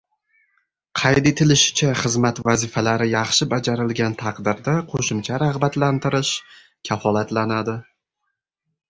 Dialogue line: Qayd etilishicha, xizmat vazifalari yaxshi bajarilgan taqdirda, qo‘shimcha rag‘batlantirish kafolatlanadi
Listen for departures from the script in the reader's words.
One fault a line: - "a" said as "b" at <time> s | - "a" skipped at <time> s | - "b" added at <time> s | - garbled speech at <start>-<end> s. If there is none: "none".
none